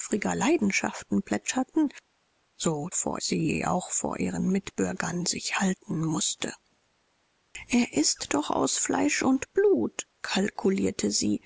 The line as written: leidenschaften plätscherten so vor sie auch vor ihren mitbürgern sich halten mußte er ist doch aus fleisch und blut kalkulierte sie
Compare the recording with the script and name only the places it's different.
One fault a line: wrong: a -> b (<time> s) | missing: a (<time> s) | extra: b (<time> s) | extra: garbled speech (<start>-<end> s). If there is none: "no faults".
no faults